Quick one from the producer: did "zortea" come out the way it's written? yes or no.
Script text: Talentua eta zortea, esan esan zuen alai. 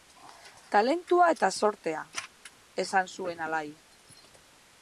yes